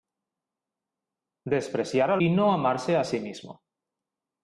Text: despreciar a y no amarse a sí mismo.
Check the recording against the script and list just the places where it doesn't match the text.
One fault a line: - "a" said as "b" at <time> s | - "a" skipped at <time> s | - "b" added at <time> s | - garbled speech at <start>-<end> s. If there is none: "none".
none